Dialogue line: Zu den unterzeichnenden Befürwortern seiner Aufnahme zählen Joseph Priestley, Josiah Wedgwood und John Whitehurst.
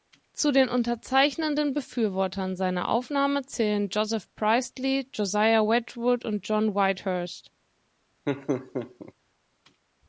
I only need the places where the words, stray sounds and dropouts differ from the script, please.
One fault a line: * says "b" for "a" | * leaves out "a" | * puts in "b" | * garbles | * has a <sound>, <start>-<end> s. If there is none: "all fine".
* has a laugh, 8.3-9.1 s